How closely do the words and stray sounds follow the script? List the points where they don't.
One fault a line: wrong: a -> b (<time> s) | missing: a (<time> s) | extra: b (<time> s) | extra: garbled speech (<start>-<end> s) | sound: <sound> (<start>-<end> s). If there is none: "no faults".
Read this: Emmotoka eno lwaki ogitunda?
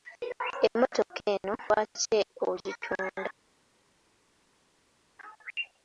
no faults